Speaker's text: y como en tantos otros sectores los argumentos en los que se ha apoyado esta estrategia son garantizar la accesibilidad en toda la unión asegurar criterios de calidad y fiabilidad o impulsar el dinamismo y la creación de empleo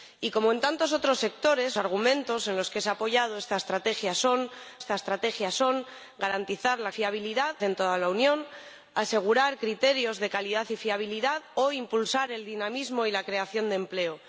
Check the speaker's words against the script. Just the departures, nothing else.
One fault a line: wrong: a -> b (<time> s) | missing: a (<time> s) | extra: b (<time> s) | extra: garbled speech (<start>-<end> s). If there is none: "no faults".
missing: los (1.8 s)
extra: esta estrategia son (4.8 s)
wrong: accesibilidad -> fiabilidad (6.9 s)